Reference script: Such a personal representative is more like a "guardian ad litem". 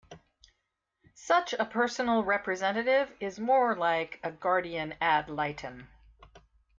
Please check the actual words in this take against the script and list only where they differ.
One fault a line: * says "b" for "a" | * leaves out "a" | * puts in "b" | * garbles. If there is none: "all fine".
all fine